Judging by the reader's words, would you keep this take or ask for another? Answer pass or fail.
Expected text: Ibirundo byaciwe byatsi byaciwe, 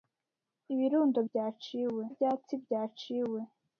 pass